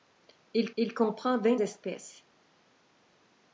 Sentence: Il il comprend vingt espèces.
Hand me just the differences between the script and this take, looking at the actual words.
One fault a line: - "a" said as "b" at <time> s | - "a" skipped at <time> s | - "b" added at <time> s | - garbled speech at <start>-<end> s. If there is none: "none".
none